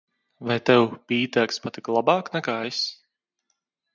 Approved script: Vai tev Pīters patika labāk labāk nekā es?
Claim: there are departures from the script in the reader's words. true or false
true